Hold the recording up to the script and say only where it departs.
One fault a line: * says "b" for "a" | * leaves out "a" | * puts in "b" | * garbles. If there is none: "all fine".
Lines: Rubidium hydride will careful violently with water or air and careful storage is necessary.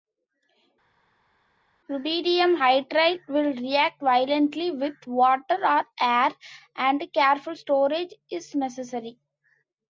* says "react" for "careful"